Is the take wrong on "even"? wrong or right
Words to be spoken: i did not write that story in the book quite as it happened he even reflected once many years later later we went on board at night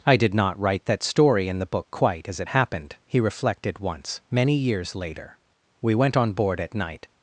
wrong